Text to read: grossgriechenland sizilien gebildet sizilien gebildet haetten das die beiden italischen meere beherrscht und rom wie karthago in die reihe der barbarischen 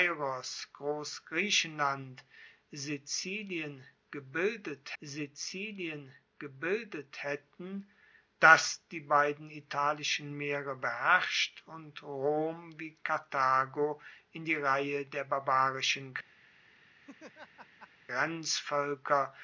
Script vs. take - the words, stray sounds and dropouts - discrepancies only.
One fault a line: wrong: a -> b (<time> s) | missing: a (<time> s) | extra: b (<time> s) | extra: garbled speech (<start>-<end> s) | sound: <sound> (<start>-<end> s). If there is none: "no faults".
sound: laugh (17.0-17.9 s)